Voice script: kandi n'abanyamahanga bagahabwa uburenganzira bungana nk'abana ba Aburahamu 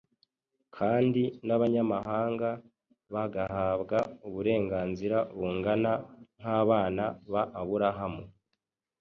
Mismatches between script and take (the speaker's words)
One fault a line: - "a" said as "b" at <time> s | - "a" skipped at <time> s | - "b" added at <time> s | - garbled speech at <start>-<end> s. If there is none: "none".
none